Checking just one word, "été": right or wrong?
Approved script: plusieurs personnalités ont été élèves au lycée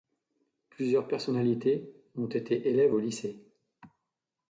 right